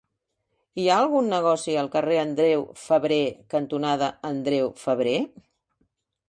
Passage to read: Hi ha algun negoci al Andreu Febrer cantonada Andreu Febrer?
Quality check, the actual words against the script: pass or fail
fail